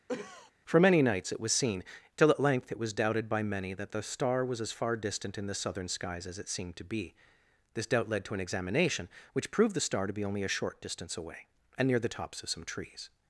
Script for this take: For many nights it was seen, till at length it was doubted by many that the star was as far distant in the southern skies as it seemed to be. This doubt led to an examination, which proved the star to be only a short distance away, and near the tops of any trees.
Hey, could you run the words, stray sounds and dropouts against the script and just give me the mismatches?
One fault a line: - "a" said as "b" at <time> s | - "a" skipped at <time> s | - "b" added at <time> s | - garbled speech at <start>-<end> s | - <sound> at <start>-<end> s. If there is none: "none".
- cough at 0.1-0.5 s
- "any" said as "some" at 12.5 s